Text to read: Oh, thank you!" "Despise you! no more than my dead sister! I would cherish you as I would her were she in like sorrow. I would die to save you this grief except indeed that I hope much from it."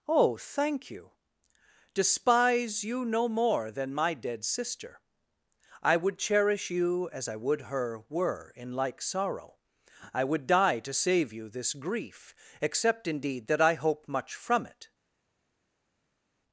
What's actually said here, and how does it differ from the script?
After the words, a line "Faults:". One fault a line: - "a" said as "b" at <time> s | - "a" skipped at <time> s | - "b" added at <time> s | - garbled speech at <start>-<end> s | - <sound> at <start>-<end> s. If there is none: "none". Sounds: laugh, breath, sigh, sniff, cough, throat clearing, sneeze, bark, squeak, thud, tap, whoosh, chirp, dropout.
Oh, thank you!" "Despise you! no more than my dead sister! I would cherish you as I would her were in like sorrow. I would die to save you this grief except indeed that I hope much from it."
Faults:
- "she" skipped at 8.5 s